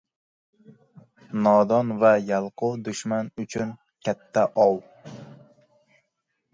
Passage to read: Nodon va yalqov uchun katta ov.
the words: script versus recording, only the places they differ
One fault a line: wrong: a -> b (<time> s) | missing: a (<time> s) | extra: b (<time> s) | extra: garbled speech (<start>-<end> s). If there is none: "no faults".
extra: dushman (2.9 s)